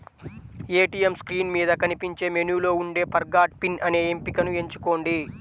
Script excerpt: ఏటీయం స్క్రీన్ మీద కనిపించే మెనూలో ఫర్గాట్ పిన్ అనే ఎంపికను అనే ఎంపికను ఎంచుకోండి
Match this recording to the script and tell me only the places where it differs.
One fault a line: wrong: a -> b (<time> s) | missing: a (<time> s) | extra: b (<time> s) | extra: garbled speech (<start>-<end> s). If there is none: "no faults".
extra: ఉండే (2.8 s)
missing: అనే ఎంపికను (4.5 s)